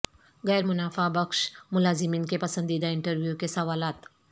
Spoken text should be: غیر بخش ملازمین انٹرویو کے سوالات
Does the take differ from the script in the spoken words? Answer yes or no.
yes